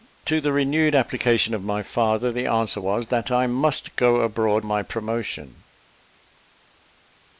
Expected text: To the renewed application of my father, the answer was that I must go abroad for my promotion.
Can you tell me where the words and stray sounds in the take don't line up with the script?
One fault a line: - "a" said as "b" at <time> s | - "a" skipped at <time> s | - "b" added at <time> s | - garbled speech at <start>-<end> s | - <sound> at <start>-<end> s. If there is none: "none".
- "for" skipped at 4.6 s